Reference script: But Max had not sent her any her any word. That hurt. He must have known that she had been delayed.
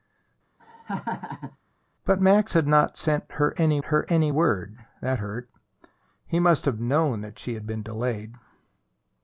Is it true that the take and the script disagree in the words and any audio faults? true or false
true